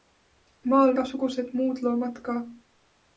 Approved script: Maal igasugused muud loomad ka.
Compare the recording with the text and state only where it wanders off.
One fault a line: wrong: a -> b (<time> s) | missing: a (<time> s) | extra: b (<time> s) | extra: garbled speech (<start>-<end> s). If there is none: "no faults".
no faults